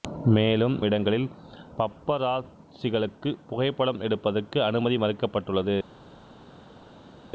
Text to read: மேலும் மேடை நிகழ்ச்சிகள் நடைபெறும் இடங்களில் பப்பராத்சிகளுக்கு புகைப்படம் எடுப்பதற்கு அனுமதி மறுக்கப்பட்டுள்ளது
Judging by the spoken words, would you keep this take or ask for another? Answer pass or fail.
fail